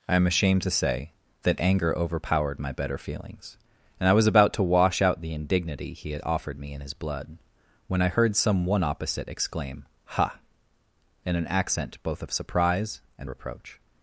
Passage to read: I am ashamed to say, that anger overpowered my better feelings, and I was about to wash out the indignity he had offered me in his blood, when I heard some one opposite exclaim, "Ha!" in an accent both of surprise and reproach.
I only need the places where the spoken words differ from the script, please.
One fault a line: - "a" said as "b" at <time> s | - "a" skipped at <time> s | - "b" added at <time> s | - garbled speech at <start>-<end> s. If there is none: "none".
none